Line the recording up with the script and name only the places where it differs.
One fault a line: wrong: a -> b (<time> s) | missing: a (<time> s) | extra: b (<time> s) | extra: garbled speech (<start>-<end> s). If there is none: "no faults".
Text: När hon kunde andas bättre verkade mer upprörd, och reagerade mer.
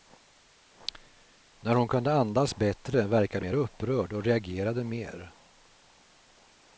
no faults